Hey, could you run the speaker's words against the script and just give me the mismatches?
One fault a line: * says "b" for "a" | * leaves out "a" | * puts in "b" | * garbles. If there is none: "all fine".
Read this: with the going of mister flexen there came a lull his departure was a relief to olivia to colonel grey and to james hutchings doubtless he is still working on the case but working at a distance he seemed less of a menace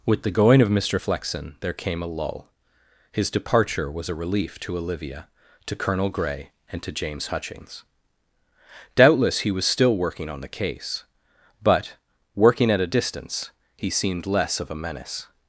* says "was" for "is"